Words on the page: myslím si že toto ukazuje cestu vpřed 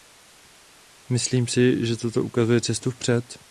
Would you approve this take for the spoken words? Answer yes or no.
yes